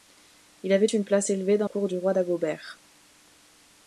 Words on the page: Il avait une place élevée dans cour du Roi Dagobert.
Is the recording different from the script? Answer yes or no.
no